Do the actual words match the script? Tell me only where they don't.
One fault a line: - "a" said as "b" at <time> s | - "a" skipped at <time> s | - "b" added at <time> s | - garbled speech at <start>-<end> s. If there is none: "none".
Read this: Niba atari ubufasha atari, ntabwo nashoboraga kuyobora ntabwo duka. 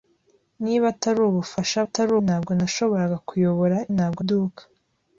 none